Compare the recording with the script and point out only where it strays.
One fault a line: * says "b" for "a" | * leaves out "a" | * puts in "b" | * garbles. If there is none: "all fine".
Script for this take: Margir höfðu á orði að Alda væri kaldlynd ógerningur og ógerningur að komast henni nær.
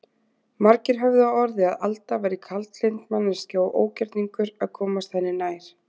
* says "manneskja" for "ógerningur"